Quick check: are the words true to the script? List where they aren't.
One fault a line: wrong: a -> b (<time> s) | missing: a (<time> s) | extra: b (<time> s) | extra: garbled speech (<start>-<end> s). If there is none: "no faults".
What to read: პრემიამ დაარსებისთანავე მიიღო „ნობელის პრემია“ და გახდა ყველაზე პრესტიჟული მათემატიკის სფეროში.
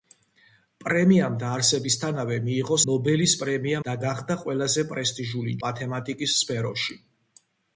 no faults